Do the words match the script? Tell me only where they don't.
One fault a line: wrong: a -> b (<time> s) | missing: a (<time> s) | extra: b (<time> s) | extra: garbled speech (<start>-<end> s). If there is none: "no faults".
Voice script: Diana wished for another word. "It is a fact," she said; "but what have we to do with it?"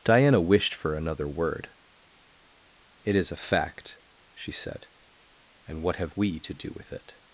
wrong: but -> and (5.7 s)